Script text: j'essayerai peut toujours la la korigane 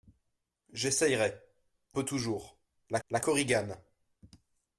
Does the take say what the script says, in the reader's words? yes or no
yes